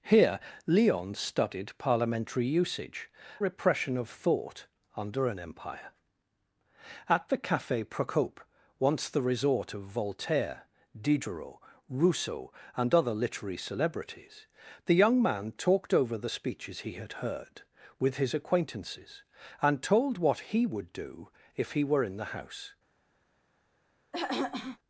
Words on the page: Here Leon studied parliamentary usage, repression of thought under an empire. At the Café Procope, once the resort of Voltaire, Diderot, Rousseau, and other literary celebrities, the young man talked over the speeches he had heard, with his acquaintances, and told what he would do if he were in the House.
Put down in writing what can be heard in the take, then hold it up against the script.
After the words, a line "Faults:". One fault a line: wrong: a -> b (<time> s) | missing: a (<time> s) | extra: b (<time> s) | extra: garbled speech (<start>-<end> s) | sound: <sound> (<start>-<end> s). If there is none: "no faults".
Here Leon studied parliamentary usage, repression of thought under an empire. At the Café Procope, once the resort of Voltaire, Diderot, Rousseau, and other literary celebrities, the young man talked over the speeches he had heard, with his acquaintances, and told what he would do if he were in the House.
Faults:
sound: throat clearing (24.1-24.8 s)